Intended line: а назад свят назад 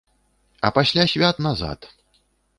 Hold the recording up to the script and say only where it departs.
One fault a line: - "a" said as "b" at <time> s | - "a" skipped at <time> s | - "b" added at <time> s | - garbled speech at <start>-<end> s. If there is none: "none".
- "назад" said as "пасля" at 0.7 s